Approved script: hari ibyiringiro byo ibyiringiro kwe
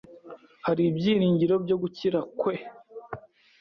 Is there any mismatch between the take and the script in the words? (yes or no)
yes